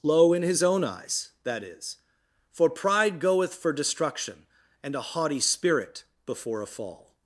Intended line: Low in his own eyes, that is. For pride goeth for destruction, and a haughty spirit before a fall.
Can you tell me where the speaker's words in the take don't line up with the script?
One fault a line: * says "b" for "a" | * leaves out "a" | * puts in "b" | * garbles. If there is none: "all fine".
all fine